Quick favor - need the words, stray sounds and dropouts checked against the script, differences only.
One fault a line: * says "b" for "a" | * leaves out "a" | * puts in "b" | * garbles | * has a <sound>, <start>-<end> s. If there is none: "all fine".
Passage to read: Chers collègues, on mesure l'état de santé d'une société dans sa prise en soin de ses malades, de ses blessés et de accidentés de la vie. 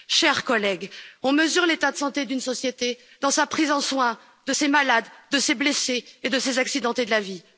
* puts in "ses"